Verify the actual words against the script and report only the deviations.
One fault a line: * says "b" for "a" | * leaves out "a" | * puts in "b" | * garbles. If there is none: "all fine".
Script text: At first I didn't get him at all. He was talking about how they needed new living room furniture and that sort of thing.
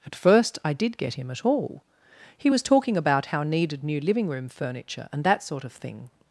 * says "did" for "didn't"
* leaves out "they"